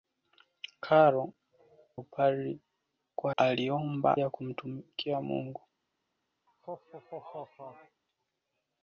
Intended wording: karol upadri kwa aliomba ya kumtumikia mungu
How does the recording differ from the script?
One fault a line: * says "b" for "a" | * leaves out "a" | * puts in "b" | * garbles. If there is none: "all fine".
all fine